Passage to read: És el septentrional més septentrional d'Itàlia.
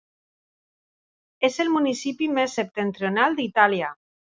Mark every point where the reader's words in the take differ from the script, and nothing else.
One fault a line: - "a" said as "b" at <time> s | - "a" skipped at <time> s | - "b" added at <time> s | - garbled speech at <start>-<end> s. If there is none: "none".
- "septentrional" said as "municipi" at 1.7 s